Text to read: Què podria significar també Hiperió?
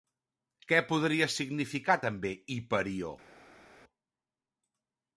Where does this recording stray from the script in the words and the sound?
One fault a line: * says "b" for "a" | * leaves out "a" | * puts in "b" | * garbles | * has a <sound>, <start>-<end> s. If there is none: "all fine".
all fine